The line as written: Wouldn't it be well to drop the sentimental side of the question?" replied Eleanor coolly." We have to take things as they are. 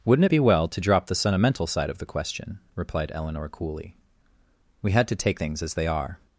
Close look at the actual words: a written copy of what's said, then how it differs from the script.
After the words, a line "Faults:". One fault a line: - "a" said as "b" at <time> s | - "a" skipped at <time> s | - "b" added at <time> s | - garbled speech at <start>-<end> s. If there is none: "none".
Wouldn't it be well to drop the sentimental side of the question?" replied Eleanor coolly." We had to take things as they are.
Faults:
- "have" said as "had" at 4.9 s